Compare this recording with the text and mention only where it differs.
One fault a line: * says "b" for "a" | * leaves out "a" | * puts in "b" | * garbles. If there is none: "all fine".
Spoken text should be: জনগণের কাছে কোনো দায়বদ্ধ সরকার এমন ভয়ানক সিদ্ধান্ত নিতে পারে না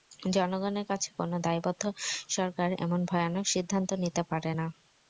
all fine